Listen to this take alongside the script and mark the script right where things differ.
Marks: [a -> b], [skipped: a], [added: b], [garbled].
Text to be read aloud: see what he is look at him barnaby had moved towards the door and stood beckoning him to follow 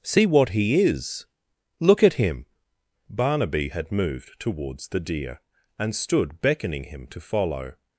see what he is look at him barnaby had moved towards the [door -> deer] and stood beckoning him to follow